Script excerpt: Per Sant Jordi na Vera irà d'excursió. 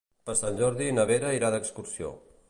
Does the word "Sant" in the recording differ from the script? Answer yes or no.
no